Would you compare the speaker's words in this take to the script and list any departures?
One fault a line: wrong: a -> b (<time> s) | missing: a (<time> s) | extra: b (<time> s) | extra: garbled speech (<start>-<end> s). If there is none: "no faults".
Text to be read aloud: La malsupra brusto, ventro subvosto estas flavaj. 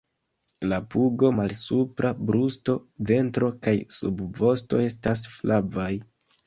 extra: pugo (0.9 s)
extra: kaj (3.7 s)